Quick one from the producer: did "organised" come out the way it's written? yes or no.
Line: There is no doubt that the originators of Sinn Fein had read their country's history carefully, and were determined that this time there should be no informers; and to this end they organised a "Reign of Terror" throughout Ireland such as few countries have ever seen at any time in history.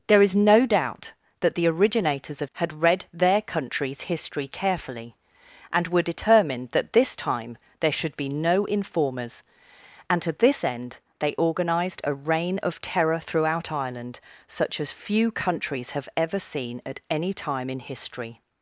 yes